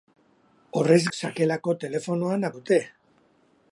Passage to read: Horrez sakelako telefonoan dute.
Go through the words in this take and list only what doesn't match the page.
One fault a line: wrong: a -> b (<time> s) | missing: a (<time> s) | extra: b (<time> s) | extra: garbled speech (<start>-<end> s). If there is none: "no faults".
no faults